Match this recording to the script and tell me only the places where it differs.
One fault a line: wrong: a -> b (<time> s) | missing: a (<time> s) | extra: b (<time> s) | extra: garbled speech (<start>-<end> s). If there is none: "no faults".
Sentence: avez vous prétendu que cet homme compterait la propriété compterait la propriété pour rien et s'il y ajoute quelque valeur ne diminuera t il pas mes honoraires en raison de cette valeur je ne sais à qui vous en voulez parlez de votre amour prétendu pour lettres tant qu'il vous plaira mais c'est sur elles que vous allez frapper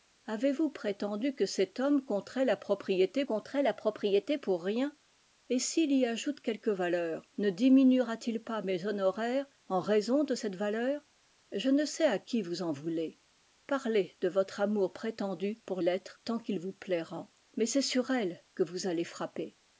no faults